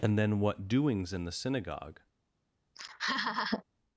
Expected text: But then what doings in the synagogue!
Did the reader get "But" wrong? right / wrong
wrong